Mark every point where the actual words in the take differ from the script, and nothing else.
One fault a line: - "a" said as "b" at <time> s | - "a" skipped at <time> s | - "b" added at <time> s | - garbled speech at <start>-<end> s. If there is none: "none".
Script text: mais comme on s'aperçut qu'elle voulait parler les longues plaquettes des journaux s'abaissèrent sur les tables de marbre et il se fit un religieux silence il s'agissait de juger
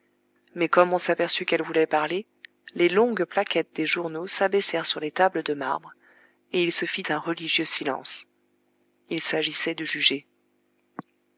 none